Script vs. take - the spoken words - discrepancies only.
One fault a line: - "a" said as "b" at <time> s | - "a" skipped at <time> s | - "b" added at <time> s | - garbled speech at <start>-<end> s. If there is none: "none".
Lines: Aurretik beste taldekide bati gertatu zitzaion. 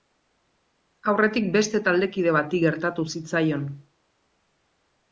none